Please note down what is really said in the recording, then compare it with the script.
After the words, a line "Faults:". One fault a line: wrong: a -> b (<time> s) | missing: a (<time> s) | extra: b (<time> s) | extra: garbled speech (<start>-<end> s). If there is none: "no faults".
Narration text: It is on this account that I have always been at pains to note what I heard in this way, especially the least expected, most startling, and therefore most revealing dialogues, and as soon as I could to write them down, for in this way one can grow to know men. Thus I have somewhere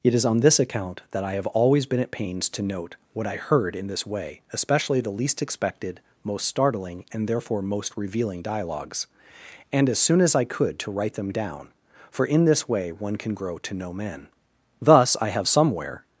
It is on this account that I have always been at pains to note what I heard in this way, especially the least expected, most startling, and therefore most revealing dialogues, and as soon as I could to write them down, for in this way one can grow to know men. Thus I have somewhere
Faults:
no faults